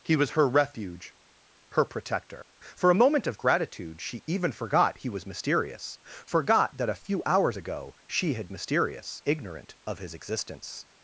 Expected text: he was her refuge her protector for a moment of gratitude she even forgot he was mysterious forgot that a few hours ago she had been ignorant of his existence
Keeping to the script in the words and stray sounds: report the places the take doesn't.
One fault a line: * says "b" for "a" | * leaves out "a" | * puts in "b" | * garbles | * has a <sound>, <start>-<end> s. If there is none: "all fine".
* says "mysterious" for "been"